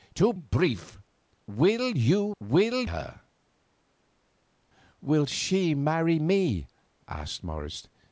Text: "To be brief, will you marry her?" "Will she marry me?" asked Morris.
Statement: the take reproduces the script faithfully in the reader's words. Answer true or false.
false